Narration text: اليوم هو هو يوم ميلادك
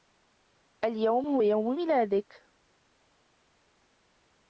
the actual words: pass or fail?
fail